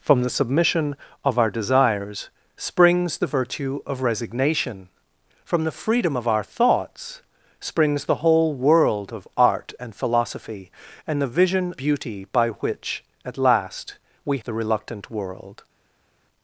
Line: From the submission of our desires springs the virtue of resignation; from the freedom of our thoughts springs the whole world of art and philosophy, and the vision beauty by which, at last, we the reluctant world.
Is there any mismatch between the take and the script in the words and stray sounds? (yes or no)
no